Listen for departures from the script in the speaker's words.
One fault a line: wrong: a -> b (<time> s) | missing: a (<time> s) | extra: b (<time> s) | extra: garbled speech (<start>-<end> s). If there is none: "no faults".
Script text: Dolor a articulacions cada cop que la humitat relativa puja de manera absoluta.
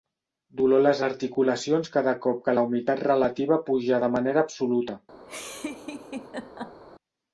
extra: les (0.8 s)